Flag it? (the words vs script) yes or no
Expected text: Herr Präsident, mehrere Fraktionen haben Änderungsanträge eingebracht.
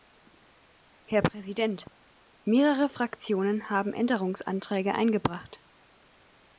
no